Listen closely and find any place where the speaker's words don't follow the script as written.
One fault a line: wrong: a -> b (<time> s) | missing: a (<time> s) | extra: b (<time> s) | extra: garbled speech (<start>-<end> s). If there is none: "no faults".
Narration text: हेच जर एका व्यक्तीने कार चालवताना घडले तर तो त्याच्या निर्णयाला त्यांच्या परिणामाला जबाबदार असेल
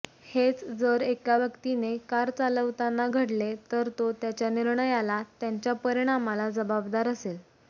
no faults